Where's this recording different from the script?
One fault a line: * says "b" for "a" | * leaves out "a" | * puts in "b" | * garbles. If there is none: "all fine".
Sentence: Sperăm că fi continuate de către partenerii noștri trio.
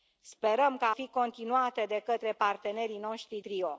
all fine